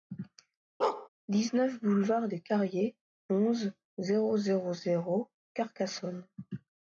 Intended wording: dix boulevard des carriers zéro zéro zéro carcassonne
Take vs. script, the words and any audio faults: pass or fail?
fail